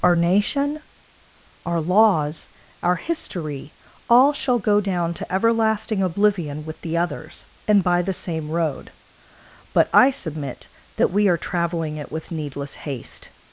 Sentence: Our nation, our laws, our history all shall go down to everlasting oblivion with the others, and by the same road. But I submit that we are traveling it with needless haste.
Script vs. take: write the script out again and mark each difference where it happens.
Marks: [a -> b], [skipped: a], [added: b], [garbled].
Our nation, our laws, our history all shall go down to everlasting oblivion with the others, and by the same road. But I submit that we are traveling it with needless haste.